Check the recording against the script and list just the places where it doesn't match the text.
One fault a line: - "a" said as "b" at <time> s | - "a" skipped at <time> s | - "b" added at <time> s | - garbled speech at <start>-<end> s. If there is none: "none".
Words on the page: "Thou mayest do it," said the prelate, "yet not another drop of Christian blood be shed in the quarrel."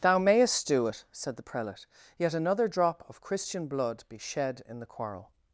- "not" skipped at 2.3 s